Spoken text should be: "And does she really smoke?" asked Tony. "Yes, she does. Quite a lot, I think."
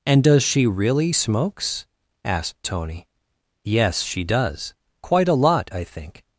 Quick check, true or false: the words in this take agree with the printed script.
false